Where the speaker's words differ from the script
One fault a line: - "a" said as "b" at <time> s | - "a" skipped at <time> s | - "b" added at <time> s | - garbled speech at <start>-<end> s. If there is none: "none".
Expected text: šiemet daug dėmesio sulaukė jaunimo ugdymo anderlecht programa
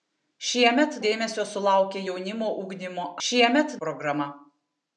- "daug" skipped at 0.9 s
- "anderlecht" said as "šiemet" at 3.3 s